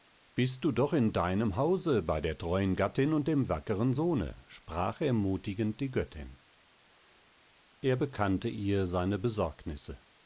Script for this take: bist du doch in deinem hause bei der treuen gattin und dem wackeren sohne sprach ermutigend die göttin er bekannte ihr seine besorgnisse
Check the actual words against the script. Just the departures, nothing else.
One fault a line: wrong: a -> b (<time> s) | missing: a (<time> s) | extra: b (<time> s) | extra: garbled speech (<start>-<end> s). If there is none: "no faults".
no faults